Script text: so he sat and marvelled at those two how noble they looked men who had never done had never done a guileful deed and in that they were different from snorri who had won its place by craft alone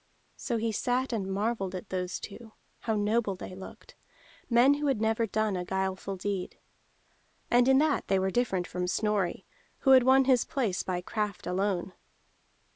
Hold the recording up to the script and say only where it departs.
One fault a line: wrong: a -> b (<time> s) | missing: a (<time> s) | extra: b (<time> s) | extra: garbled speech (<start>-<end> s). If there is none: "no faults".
missing: had never done (5.5 s)
wrong: its -> his (10.2 s)